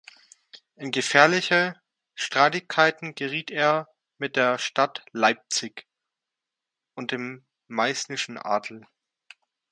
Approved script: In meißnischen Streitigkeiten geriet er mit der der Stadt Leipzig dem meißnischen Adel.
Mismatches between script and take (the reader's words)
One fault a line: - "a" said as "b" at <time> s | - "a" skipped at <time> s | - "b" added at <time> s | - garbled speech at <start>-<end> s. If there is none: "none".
- "meißnischen" said as "gefährliche" at 0.9 s
- "der" skipped at 4.6 s
- "und" added at 6.9 s